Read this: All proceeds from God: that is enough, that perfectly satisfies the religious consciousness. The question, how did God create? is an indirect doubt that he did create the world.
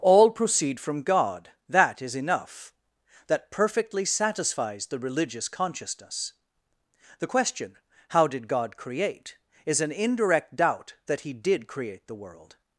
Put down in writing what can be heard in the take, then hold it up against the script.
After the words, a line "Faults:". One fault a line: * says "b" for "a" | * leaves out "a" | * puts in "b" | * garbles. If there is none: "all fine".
All proceed from God: that is enough, that perfectly satisfies the religious consciousness. The question, how did God create? is an indirect doubt that he did create the world.
Faults:
* says "proceed" for "proceeds"